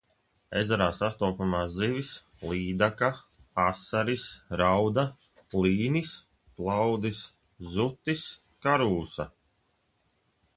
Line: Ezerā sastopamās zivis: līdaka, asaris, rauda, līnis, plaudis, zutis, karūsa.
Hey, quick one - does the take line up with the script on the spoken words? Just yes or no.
yes